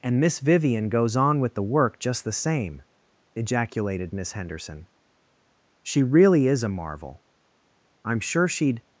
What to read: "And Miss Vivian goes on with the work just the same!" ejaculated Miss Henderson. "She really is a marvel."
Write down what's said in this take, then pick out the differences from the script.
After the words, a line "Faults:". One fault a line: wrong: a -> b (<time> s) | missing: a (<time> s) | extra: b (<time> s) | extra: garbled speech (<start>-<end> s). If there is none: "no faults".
"And Miss Vivian goes on with the work just the same!" ejaculated Miss Henderson. "She really is a marvel." "I'm sure she'd
Faults:
extra: I'm sure she'd (8.0 s)